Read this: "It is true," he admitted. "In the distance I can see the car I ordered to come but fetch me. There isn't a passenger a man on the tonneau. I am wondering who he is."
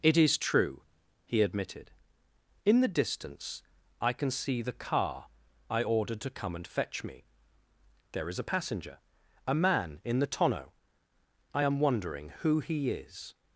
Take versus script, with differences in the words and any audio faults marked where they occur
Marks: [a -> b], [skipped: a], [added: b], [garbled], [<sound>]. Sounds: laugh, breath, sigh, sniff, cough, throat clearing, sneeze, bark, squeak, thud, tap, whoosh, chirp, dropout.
"It is true," he admitted. "In the distance I can see the car I ordered to come [but -> and] fetch me. There [isn't -> is] a passenger a man [on -> in] the tonneau. I am wondering who he is."